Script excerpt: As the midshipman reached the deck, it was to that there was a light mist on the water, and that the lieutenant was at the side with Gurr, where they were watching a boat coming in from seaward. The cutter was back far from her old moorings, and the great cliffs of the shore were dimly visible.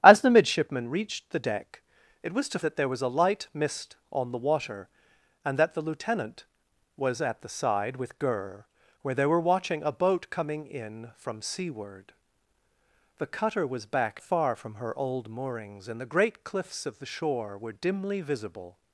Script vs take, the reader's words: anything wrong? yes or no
no